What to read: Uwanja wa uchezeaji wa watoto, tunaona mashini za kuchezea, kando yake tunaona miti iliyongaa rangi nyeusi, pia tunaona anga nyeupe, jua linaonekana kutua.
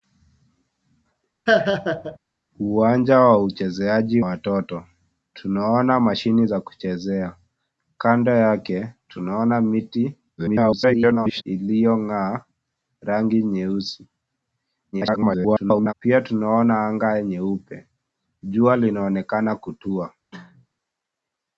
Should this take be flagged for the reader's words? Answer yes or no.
yes